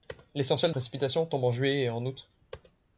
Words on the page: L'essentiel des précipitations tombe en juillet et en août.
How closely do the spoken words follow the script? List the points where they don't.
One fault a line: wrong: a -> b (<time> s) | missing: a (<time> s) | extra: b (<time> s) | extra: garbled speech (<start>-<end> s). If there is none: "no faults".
missing: des (0.7 s)